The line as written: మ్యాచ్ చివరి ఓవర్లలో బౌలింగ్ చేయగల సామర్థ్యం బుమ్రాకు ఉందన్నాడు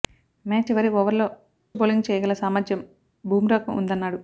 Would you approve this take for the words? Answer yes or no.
yes